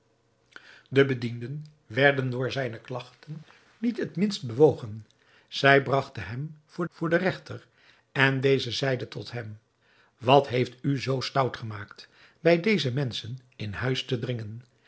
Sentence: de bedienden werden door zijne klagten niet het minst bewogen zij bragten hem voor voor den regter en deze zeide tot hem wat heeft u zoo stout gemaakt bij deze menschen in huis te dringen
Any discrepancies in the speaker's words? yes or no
no